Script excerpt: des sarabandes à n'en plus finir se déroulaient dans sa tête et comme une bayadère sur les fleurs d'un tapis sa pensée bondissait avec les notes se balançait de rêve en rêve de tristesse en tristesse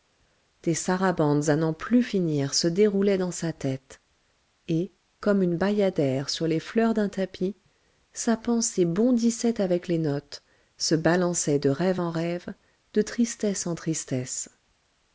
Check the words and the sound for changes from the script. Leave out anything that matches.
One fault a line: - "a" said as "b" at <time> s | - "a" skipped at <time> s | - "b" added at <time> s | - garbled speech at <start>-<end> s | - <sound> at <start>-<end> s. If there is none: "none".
none